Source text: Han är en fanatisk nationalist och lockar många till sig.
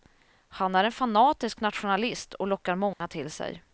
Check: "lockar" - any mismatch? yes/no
no